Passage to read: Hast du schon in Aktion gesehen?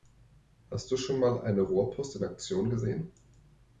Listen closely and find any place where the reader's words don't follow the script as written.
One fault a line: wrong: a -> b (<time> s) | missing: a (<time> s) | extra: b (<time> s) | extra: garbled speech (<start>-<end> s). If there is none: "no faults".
extra: mal eine Rohrpost (1.2 s)